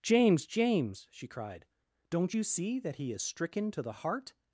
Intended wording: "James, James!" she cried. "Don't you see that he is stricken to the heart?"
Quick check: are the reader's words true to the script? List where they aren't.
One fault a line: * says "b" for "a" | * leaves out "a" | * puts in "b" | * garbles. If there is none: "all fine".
all fine